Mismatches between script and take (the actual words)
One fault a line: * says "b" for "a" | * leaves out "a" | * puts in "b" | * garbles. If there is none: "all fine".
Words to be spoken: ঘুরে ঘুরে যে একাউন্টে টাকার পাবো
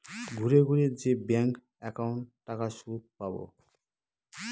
* puts in "ব্যাঙ্ক"
* puts in "সুদ"